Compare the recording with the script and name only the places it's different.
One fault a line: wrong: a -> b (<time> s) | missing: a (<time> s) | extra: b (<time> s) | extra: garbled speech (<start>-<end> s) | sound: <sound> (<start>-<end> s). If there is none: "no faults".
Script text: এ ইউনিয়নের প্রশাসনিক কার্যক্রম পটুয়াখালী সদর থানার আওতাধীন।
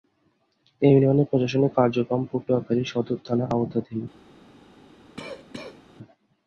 sound: cough (5.2-5.8 s)